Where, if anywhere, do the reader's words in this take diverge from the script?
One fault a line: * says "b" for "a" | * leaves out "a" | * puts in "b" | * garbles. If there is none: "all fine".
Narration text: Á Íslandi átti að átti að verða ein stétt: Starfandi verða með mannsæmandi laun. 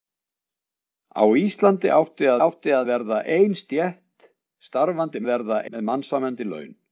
all fine